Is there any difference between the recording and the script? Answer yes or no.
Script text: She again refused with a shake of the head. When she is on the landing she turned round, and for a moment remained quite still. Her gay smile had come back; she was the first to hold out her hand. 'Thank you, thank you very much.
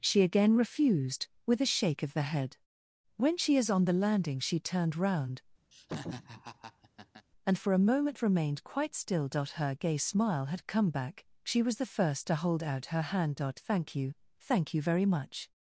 no